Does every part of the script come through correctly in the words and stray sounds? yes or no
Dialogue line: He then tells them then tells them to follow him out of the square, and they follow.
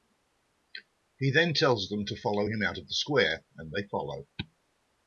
no